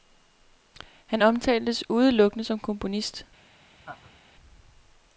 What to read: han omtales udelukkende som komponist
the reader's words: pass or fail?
pass